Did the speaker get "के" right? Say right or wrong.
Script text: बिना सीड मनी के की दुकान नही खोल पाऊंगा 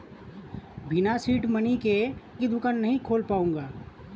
right